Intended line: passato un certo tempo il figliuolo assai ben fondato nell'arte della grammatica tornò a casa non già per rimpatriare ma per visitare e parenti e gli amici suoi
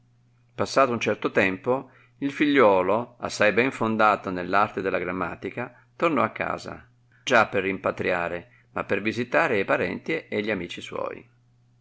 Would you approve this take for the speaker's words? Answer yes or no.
no